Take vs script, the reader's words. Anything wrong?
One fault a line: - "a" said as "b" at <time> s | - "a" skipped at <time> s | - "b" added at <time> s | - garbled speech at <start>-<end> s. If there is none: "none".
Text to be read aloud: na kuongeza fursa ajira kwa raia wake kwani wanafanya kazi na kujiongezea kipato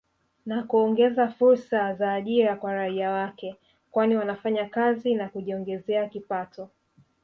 - "za" added at 1.9 s